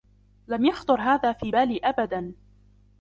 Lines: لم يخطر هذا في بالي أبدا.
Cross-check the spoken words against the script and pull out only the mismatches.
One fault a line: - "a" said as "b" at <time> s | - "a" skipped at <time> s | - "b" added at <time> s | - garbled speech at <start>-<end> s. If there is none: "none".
none